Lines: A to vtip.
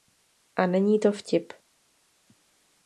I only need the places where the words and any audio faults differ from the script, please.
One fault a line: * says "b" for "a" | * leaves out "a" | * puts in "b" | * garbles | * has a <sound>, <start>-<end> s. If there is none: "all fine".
* puts in "není"